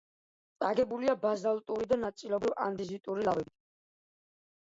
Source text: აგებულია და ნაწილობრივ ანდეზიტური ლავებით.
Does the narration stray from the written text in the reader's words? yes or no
yes